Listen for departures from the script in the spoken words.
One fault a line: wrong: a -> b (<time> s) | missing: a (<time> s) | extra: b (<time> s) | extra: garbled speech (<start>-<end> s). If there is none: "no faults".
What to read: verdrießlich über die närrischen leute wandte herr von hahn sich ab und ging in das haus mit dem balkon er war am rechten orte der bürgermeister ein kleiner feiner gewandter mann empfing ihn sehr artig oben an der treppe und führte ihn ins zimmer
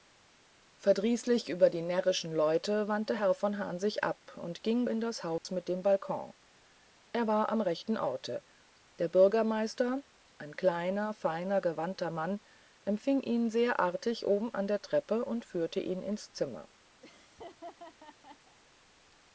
no faults